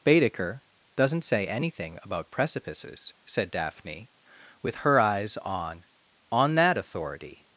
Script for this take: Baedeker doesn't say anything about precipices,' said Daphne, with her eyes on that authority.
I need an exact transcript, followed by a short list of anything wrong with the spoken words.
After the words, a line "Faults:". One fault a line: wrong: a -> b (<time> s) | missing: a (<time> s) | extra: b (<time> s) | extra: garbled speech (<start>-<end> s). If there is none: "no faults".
Baedeker doesn't say anything about precipices,' said Daphne, with her eyes on on that authority.
Faults:
extra: on (6.3 s)